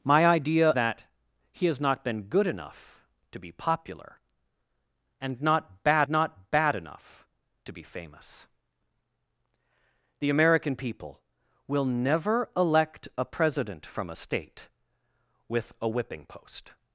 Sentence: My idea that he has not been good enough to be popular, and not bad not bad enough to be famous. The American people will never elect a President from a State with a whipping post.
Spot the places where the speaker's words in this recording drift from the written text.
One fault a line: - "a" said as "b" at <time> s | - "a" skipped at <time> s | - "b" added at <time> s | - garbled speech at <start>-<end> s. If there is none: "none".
none